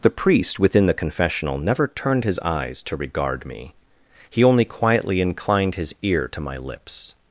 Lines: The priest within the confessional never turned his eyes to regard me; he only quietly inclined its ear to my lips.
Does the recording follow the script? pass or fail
fail